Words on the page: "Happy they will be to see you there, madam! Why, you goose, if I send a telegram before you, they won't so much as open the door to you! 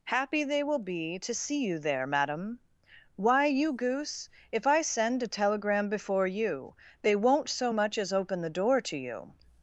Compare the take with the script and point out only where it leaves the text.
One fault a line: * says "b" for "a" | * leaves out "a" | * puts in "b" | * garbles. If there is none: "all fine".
all fine